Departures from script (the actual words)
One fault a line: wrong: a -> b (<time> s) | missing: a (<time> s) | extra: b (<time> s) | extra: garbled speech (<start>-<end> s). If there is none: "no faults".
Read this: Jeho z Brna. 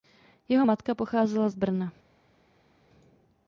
extra: matka pocházela (0.6 s)